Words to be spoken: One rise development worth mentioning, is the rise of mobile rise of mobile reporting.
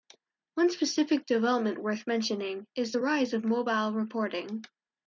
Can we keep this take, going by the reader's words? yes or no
no